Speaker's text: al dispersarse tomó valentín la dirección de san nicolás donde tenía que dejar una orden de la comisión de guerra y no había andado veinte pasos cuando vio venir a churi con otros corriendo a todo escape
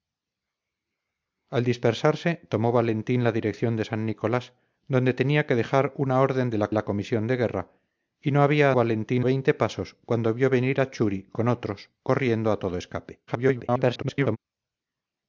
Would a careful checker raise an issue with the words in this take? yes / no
yes